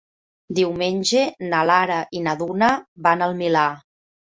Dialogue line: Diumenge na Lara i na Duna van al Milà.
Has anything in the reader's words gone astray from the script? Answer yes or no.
no